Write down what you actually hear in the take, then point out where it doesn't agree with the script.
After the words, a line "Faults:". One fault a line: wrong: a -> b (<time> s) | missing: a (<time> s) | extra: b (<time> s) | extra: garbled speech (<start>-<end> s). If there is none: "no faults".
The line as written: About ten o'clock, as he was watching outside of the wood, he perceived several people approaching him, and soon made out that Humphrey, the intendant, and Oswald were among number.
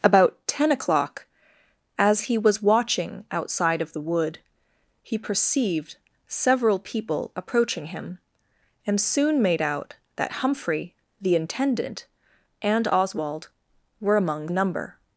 About ten o'clock, as he was watching outside of the wood, he perceived several people approaching him, and soon made out that Humphrey, the intendant, and Oswald were among number.
Faults:
no faults